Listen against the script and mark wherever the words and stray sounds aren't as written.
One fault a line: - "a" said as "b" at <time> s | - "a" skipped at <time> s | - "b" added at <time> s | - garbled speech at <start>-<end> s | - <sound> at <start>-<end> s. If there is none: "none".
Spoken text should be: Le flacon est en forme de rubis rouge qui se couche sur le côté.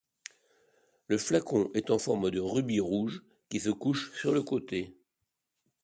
none